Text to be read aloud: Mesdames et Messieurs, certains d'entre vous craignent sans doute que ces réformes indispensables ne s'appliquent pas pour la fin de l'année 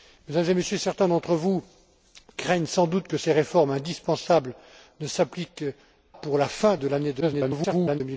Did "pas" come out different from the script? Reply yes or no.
yes